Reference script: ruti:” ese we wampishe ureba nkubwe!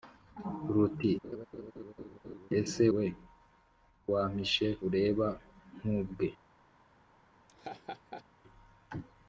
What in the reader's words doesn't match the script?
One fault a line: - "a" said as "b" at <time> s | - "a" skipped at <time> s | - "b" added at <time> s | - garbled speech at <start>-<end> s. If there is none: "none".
none